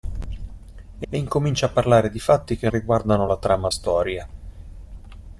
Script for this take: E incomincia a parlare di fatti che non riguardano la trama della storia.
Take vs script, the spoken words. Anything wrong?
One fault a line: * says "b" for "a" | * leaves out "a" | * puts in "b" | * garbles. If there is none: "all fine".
* puts in "e"
* leaves out "non"
* leaves out "della"